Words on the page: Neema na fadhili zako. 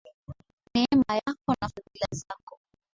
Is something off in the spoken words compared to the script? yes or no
yes